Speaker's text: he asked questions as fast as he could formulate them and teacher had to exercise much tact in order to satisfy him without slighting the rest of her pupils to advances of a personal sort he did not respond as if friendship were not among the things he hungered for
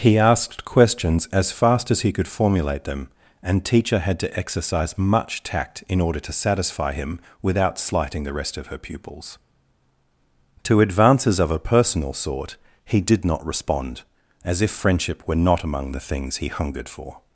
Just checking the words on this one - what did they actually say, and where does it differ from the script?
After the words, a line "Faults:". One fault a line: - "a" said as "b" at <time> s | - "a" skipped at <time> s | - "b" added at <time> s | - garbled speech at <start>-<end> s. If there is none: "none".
he asked questions as fast as he could formulate them and teacher had to exercise much tact in order to satisfy him without slighting the rest of her pupils to advances of a personal sort he did not respond as if friendship were not among the things he hungered for
Faults:
none